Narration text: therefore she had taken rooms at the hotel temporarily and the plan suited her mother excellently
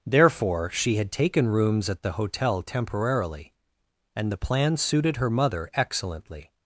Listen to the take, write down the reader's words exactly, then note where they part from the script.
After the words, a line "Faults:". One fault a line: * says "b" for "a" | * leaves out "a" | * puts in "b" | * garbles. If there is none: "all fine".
therefore she had taken rooms at the hotel temporarily and the plan suited her mother excellently
Faults:
all fine